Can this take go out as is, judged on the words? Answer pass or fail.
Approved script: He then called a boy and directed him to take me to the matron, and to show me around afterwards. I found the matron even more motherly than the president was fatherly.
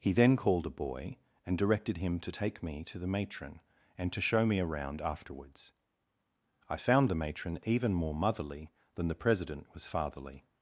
pass